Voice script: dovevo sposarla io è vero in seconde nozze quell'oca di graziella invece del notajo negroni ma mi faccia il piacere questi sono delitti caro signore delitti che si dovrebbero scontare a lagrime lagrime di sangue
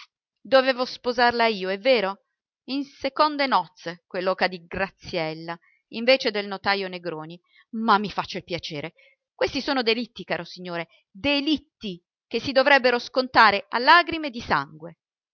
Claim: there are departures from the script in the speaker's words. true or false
true